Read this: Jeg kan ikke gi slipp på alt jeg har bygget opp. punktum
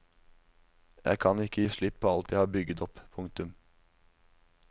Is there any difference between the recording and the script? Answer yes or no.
no